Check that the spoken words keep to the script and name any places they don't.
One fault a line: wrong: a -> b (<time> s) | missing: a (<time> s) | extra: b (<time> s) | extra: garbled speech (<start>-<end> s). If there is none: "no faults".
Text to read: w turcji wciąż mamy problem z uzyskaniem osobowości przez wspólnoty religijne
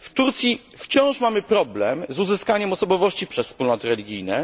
no faults